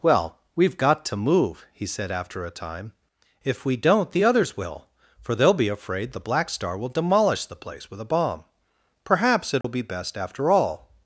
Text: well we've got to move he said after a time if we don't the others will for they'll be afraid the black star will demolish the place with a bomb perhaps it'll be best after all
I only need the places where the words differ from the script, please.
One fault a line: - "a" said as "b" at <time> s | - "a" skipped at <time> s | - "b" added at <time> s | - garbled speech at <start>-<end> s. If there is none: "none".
none